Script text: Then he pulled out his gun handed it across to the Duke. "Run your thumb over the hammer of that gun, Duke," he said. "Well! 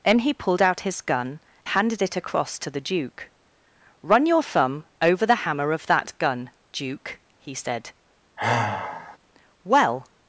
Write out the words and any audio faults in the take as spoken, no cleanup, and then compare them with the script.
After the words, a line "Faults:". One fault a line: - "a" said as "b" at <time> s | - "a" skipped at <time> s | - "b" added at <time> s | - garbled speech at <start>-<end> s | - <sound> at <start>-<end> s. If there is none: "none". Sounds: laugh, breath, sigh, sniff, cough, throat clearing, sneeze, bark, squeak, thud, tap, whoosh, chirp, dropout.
Then he pulled out his gun handed it across to the Duke. "Run your thumb over the hammer of that gun, Duke," he said. "Well!
Faults:
- sigh at 8.4-9.2 s